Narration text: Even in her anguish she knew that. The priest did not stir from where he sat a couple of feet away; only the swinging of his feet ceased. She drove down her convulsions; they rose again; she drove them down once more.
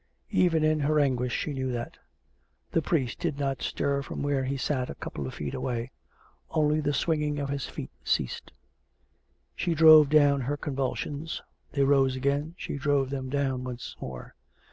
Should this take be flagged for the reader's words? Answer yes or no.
no